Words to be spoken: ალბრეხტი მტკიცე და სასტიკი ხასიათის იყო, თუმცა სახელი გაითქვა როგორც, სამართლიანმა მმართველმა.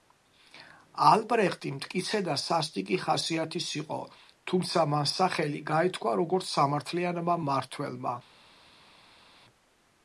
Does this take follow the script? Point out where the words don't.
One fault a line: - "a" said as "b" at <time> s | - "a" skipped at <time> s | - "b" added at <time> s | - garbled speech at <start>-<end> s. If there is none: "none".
- "მან" added at 4.9 s